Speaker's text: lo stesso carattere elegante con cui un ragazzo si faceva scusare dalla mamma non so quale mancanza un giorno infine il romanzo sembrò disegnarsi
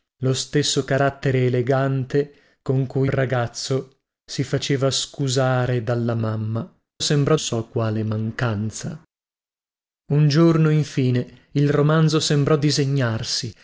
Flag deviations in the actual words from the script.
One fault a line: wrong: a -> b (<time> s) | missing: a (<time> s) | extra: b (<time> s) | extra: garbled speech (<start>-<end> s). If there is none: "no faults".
missing: un (3.1 s)
wrong: non -> sembrò (7.0 s)